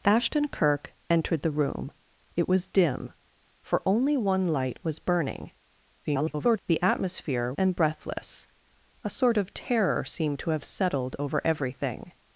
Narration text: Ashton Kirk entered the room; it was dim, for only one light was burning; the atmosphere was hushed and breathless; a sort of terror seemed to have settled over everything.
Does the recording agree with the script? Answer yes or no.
no